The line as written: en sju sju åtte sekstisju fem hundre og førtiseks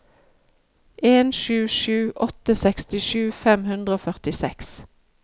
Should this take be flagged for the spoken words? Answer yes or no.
no